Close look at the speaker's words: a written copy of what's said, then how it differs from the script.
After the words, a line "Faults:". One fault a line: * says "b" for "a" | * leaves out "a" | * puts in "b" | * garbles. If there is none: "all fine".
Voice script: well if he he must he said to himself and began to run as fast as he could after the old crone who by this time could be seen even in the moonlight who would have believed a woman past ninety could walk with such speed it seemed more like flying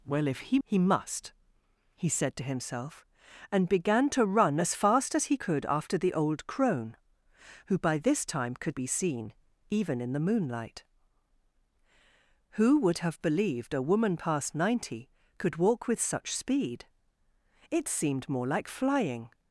well if he he must he said to himself and began to run as fast as he could after the old crone who by this time could be seen even in the moonlight who would have believed a woman past ninety could walk with such speed it seemed more like flying
Faults:
all fine